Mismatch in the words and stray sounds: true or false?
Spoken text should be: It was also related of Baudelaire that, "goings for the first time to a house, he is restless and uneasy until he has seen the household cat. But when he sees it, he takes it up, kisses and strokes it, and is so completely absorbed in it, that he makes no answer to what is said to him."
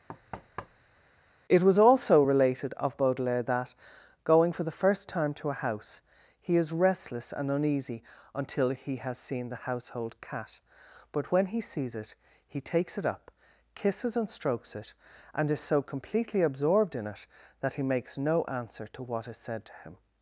true